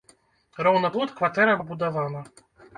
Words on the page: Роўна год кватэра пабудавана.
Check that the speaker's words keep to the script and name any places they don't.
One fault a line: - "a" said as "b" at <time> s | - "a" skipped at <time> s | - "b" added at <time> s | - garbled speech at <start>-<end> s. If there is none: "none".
none